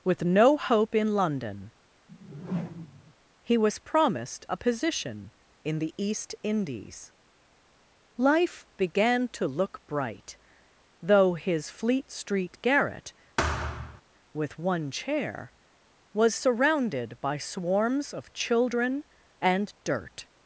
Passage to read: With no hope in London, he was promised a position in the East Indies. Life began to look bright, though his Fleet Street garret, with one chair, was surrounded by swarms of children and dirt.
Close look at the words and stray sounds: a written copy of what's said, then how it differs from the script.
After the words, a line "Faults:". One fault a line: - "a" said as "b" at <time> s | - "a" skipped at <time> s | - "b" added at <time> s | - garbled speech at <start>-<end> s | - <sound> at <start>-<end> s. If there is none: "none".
With no hope in London, he was promised a position in the East Indies. Life began to look bright, though his Fleet Street garret, with one chair, was surrounded by swarms of children and dirt.
Faults:
- whoosh at 2.1-3.1 s
- thud at 13.4-14.0 s